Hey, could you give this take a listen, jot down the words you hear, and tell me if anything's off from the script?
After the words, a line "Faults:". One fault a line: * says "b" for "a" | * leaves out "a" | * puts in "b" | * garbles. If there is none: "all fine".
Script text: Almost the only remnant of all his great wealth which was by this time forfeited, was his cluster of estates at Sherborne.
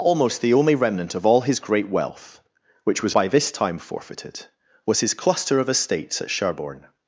Almost the only remnant of all his great wealth which was by this time forfeited, was his cluster of estates at Sherborne.
Faults:
all fine